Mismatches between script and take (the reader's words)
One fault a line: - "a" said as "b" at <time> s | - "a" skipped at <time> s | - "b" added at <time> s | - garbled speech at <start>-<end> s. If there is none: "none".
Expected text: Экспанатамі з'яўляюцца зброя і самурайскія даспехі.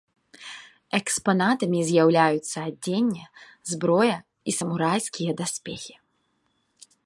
- "адзенне" added at 2.7 s